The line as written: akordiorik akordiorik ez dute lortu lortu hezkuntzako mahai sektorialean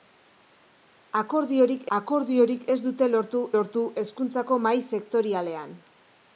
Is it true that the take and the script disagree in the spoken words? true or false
false